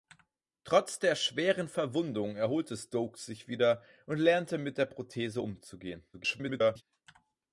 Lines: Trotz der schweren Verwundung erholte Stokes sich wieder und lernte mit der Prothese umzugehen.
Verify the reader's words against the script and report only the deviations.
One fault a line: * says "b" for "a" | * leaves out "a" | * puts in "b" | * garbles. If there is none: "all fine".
* garbles